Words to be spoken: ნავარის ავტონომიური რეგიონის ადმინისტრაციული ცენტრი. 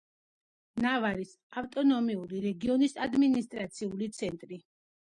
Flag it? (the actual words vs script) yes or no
no